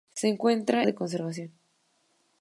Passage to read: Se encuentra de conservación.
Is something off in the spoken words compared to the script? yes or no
no